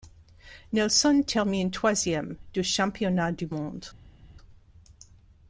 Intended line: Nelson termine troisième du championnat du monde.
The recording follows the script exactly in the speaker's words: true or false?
true